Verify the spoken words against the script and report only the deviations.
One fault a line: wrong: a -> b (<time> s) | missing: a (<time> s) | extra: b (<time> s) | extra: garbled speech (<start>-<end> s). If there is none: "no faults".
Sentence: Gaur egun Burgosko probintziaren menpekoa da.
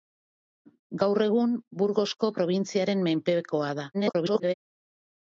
extra: garbled speech (3.9-4.5 s)